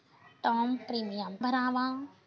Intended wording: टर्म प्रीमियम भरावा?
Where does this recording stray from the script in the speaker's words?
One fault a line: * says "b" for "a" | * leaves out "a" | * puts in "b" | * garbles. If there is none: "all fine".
all fine